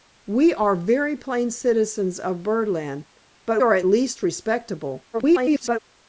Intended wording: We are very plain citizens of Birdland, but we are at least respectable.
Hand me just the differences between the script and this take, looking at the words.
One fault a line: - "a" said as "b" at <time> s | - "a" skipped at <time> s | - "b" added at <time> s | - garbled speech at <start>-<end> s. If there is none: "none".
- "we" skipped at 3.6 s
- garbled speech at 5.1-5.8 s